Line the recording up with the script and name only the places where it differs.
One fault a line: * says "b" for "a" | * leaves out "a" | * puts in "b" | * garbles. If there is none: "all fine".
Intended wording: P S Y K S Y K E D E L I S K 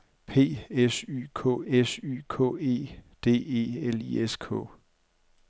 all fine